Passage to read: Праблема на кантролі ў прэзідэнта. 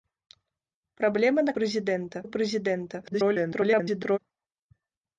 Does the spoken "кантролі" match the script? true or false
false